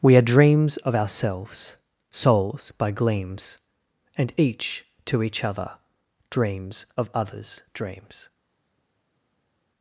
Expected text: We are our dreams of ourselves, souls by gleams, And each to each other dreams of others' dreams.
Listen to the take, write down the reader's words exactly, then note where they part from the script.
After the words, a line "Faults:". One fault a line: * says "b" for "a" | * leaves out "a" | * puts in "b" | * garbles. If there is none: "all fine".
We are dreams of ourselves, souls by gleams, And each to each other dreams of others' dreams.
Faults:
* leaves out "our"